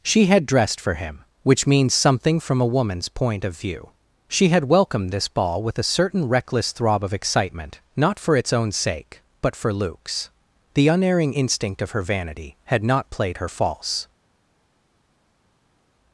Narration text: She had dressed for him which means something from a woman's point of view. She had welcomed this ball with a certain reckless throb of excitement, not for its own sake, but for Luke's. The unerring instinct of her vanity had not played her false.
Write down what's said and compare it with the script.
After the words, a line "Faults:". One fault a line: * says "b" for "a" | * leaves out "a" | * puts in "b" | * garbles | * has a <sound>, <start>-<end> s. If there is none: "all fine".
She had dressed for him which means something from a woman's point of view. She had welcomed this ball with a certain reckless throb of excitement, not for its own sake, but for Luke's. The unerring instinct of her vanity had not played her false.
Faults:
all fine